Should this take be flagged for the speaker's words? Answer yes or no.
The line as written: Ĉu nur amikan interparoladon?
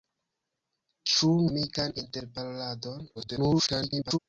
yes